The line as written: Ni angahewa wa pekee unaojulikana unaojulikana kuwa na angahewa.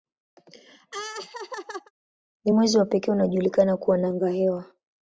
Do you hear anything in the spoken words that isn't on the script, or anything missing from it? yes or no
yes